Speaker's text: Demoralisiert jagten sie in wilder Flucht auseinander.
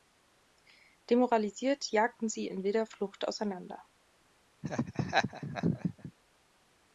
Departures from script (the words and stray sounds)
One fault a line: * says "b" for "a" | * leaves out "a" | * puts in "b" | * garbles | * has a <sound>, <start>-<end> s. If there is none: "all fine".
* has a laugh, 4.6-6.1 s